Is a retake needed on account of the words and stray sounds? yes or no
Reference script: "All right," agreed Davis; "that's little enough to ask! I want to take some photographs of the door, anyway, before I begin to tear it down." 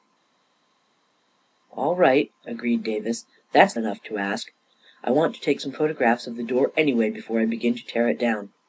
yes